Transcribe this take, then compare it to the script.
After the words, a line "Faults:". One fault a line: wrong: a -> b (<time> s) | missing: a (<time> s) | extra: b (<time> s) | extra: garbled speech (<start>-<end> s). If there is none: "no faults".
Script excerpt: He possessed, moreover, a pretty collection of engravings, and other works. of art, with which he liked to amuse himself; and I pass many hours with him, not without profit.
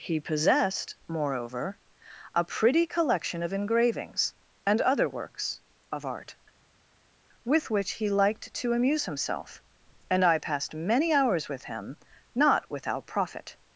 He possessed, moreover, a pretty collection of engravings, and other works. of art, with which he liked to amuse himself; and I passed many hours with him, not without profit.
Faults:
wrong: pass -> passed (10.4 s)